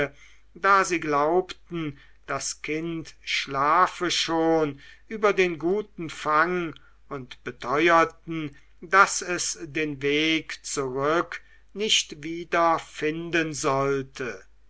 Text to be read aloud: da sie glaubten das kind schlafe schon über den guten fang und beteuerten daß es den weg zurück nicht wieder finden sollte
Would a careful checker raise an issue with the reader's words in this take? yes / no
no